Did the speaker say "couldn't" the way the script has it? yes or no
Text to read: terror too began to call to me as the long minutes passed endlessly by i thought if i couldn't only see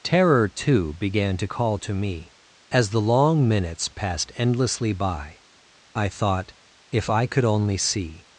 no